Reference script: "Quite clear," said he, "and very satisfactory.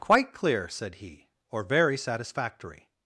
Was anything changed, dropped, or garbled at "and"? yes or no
yes